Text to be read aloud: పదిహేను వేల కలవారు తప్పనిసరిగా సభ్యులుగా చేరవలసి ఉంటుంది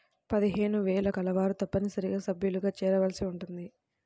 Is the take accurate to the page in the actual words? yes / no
yes